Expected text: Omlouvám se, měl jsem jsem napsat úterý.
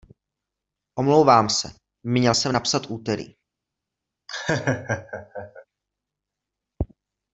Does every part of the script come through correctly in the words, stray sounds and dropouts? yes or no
no